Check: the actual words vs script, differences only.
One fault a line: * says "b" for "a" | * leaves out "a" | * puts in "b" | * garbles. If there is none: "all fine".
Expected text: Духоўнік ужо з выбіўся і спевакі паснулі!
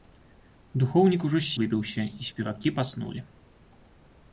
all fine